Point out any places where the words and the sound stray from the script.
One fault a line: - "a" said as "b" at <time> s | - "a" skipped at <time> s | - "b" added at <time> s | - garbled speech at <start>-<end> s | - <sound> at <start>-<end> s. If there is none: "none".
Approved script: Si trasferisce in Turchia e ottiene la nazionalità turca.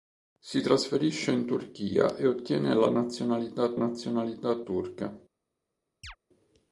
- "nazionalità" added at 3.7 s
- chirp at 6.0-6.2 s